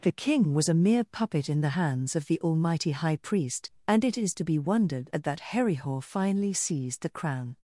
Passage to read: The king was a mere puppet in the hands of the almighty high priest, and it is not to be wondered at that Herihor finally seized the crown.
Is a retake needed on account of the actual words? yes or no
yes